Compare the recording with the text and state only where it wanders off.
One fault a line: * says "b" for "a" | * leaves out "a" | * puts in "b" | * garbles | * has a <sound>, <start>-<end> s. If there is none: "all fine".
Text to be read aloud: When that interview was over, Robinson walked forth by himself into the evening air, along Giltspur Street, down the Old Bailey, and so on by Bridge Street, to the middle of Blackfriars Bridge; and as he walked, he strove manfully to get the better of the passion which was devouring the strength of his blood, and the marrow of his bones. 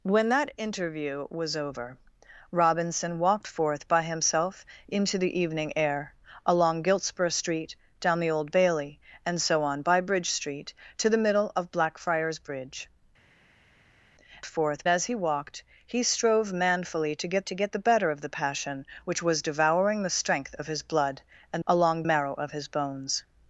* says "forth" for "and"
* puts in "to get"
* says "along" for "the"